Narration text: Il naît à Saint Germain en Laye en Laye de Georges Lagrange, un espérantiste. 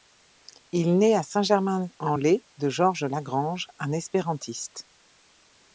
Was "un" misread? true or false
false